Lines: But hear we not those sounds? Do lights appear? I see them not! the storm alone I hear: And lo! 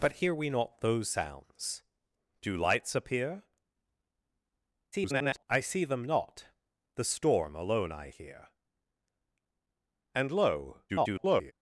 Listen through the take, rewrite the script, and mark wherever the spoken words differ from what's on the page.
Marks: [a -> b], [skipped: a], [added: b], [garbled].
But hear we not those sounds? Do lights appear? [garbled] I see them not! the storm alone I hear: And lo! [garbled]